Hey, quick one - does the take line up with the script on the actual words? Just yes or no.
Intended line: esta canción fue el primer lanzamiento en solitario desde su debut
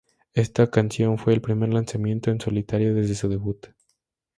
yes